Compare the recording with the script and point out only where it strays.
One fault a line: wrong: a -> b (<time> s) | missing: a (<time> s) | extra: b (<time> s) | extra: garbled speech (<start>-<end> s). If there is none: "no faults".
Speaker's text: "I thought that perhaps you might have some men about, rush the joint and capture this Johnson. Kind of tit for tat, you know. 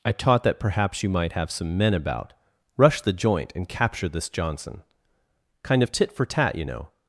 wrong: thought -> taught (0.1 s)